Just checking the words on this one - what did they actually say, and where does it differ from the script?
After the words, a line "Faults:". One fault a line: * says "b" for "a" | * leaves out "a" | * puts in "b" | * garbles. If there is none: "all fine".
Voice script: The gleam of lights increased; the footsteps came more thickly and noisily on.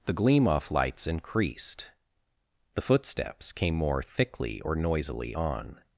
The gleam off lights increased; the footsteps came more thickly or noisily on.
Faults:
* says "off" for "of"
* says "or" for "and"